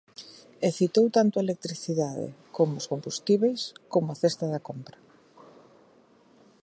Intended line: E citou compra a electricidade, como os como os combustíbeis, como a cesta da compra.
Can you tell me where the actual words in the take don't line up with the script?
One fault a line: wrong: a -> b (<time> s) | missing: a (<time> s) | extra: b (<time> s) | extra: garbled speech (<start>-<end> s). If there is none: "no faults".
wrong: compra -> tanto (1.2 s)
missing: como os (2.9 s)